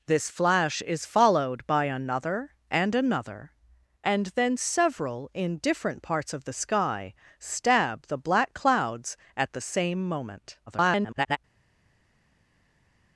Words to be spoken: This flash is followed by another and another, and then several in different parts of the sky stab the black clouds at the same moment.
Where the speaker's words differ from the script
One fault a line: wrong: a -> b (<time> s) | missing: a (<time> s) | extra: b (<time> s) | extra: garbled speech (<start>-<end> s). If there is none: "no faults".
extra: garbled speech (10.7-11.4 s)